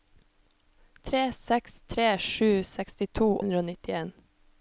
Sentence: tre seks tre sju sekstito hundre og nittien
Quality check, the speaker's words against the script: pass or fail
pass